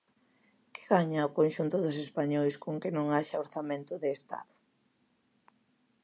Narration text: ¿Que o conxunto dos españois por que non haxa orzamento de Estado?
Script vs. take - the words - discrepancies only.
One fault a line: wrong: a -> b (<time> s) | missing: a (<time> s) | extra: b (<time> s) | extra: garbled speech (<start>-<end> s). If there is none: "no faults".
extra: gaña (0.9 s)
wrong: por -> con (2.6 s)